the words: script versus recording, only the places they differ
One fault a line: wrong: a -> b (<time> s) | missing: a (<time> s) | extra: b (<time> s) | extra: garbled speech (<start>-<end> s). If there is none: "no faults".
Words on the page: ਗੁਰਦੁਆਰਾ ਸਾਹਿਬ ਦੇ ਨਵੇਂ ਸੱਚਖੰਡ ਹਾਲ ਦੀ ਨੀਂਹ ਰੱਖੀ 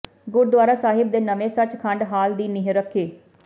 no faults